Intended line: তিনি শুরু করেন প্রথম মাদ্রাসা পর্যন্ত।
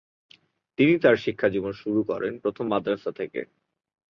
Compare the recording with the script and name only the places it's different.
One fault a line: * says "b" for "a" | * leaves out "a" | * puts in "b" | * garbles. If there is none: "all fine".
* puts in "তার শিক্ষাজীবন"
* says "থেকে" for "পর্যন্ত"